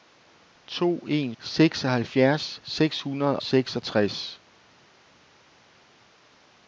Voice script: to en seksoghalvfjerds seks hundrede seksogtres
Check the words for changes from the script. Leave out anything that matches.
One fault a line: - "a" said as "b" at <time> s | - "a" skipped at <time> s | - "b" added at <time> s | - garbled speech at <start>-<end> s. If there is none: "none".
none